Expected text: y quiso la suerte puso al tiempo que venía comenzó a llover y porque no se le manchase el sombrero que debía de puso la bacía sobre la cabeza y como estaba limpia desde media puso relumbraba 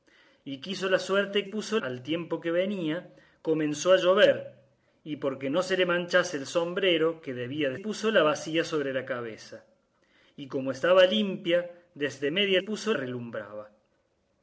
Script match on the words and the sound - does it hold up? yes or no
yes